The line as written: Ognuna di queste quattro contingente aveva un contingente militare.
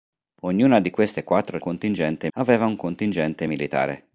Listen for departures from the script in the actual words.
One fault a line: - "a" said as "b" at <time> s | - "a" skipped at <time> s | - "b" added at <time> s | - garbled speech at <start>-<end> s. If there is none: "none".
none